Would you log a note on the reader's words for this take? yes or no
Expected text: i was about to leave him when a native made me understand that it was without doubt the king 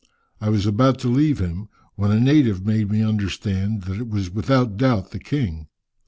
no